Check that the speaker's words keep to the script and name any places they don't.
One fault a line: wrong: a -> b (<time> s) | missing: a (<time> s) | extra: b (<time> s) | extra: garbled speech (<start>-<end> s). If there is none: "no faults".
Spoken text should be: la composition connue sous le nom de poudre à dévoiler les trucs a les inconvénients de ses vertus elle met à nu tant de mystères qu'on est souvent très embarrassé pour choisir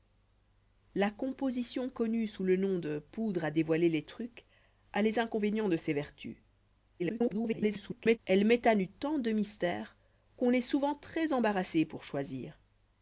extra: garbled speech (7.0-8.2 s)